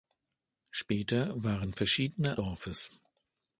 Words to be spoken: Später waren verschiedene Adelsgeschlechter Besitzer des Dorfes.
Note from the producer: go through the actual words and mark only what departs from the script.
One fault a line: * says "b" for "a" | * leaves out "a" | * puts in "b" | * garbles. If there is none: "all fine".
* leaves out "Adelsgeschlechter Besitzer des"